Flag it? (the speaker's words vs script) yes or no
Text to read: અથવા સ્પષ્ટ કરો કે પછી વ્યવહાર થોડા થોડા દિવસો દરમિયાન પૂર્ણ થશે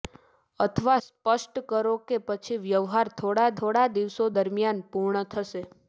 no